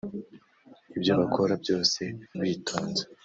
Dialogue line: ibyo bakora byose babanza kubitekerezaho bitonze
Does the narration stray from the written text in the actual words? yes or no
yes